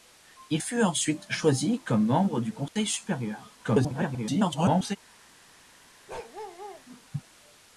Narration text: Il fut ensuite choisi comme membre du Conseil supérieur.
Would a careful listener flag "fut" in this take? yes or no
no